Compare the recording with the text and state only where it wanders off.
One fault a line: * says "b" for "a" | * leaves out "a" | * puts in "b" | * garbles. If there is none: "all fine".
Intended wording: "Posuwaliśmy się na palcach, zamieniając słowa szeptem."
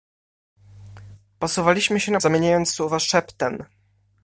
* leaves out "palcach"